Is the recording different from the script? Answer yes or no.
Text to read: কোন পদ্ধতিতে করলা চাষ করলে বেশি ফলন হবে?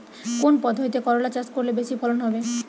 no